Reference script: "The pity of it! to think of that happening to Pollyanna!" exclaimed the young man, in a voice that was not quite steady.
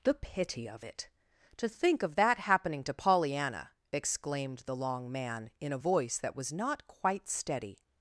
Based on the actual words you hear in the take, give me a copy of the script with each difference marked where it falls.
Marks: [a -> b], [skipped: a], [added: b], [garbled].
"The pity of it! to think of that happening to Pollyanna!" exclaimed the [young -> long] man, in a voice that was not quite steady.